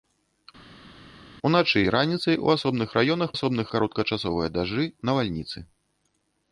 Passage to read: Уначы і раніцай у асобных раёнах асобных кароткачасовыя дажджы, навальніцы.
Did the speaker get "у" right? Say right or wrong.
right